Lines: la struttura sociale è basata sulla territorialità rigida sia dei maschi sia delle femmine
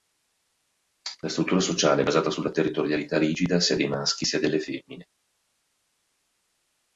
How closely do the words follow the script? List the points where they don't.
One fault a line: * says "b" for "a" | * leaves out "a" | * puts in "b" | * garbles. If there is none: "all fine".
all fine